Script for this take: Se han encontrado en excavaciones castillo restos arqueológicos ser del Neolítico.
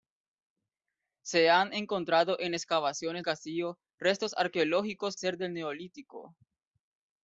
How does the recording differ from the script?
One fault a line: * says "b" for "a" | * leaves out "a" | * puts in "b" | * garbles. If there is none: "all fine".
all fine